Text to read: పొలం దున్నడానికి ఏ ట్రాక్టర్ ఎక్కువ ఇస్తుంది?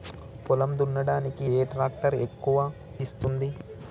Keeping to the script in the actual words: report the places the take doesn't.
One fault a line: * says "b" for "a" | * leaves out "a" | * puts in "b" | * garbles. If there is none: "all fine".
all fine